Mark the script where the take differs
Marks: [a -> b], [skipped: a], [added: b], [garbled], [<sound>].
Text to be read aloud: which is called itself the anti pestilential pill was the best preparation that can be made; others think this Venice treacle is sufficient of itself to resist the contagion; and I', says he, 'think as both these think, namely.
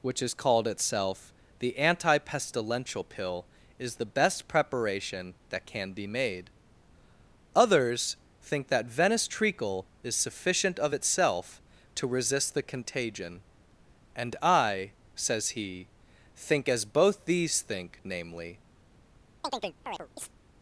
which is called itself the anti pestilential pill [was -> is] the best preparation that can be made; others think [this -> that] Venice treacle is sufficient of itself to resist the contagion; and I', says he, 'think as both these think, namely. [chirp]